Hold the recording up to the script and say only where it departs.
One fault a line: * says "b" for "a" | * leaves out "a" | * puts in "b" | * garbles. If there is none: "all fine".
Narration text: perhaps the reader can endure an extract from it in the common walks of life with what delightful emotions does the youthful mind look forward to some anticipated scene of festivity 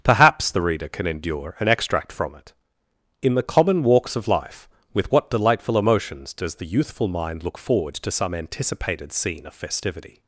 all fine